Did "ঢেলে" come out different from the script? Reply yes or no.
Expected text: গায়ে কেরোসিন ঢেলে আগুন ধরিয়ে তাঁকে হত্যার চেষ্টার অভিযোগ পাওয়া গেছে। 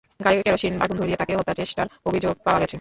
yes